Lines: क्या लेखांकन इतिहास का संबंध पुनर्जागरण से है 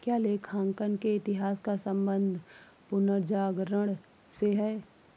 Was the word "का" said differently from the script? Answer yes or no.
no